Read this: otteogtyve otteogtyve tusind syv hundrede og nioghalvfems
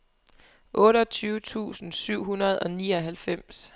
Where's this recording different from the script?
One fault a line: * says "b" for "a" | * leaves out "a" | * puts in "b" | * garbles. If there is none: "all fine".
* leaves out "otteogtyve"